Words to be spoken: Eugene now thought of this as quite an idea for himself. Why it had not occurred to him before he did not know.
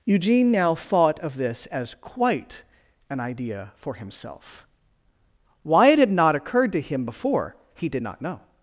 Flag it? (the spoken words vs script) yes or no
no